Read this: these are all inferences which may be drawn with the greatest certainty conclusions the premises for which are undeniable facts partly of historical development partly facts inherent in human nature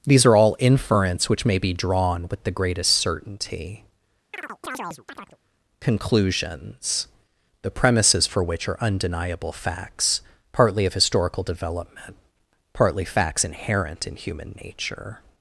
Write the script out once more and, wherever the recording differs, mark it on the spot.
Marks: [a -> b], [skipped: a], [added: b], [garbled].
these are all [inferences -> inference] which may be drawn with the greatest certainty conclusions the premises for which are undeniable facts partly of historical development partly facts inherent in human nature